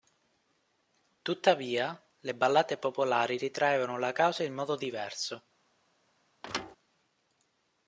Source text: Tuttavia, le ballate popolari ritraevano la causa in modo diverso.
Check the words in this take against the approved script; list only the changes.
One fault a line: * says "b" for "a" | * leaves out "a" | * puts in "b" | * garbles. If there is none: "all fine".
all fine